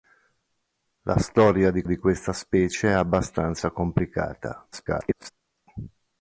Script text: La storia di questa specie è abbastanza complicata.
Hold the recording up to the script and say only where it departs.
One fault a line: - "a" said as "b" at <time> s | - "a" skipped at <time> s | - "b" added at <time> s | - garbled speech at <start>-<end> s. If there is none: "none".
- "di" added at 1.8 s
- garbled speech at 4.7-5.3 s